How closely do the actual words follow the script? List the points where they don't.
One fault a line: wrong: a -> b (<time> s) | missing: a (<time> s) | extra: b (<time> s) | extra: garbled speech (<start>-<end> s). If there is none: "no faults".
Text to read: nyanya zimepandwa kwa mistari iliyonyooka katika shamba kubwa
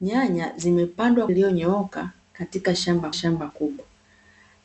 missing: kwa mistari (1.3 s)
extra: shamba (3.1 s)